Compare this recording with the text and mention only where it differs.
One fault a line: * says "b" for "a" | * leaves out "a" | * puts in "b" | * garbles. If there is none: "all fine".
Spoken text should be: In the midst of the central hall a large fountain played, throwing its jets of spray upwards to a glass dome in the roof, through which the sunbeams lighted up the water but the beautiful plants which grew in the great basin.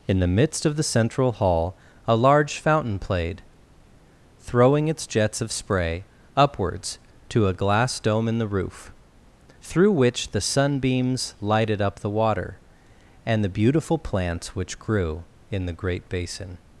* says "and" for "but"